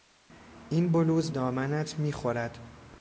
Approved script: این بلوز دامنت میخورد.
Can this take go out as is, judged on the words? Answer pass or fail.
pass